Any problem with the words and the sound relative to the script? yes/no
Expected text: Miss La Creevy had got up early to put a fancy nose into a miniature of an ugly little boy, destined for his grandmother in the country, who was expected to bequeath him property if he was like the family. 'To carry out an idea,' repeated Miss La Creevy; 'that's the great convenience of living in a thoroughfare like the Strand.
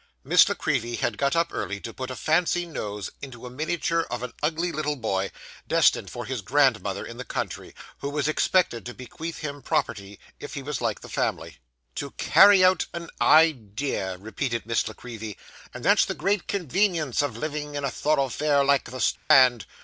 yes